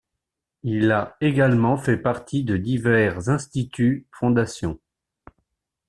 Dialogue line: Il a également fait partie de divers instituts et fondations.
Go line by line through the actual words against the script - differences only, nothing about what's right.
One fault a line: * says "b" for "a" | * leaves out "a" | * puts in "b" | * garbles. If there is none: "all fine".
* leaves out "et"